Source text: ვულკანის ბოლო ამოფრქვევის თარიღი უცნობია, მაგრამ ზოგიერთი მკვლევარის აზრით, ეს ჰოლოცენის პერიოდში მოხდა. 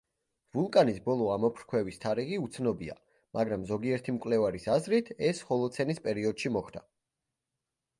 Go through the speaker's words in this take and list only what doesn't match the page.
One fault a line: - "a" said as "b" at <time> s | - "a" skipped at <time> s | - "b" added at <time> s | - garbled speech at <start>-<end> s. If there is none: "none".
none